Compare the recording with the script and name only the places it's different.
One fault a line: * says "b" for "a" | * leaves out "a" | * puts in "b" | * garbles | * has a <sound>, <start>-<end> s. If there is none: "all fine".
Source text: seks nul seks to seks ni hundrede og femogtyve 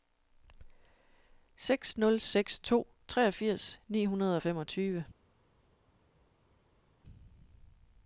* says "treogfirs" for "seks"